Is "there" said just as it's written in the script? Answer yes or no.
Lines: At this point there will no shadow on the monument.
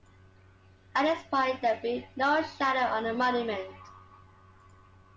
yes